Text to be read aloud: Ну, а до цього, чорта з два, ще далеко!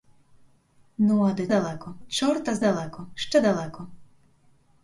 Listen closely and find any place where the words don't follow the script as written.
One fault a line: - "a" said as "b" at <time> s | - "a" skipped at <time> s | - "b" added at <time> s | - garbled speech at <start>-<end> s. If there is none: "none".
- "цього" said as "далеко" at 1.5 s
- "два" said as "далеко" at 2.6 s